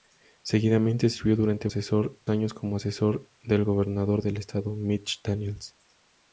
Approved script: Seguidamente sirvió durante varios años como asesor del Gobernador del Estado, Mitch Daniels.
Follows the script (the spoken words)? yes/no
no